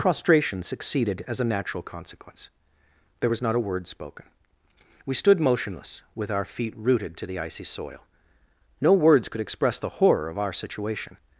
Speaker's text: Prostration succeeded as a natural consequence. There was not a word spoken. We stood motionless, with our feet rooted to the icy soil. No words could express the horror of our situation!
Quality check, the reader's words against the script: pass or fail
pass